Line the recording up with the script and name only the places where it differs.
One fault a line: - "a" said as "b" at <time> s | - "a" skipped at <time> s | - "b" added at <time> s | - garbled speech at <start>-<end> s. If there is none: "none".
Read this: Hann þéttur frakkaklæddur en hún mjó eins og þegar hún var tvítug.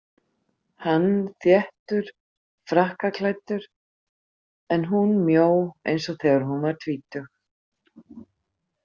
none